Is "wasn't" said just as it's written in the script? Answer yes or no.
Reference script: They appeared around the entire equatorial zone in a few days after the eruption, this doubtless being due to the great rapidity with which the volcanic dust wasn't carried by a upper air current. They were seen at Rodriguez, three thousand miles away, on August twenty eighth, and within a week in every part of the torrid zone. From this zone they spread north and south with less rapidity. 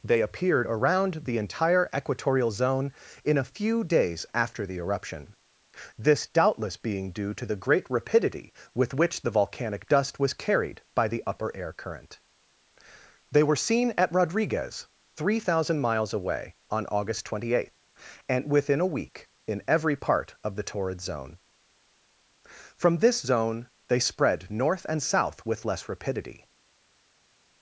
no